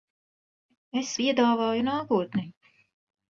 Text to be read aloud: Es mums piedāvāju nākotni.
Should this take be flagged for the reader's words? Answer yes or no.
yes